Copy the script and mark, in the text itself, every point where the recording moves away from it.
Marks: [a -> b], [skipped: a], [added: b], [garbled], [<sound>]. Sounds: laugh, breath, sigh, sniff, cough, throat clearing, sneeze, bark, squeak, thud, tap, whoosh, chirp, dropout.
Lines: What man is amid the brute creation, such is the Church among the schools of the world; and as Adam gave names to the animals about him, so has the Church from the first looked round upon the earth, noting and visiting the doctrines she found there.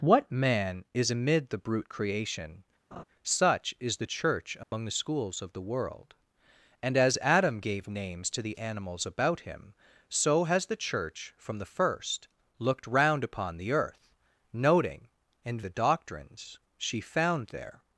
What man is amid the brute creation, [laugh] such is the Church among [dropout] the schools of the world; and as Adam gave names to the animals about him, so has the Church from the first looked round upon the earth, noting and [skipped: visiting] the doctrines she found there.